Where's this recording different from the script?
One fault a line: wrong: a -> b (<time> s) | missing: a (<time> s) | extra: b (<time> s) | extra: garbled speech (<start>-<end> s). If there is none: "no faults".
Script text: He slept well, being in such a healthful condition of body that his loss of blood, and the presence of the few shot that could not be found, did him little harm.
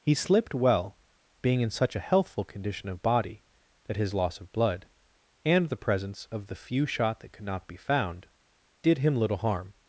wrong: slept -> slipped (0.1 s)